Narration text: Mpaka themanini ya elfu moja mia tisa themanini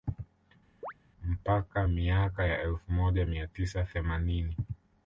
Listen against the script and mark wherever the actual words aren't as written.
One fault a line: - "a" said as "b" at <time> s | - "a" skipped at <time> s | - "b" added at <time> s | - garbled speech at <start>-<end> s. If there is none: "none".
- "themanini" said as "miaka" at 1.9 s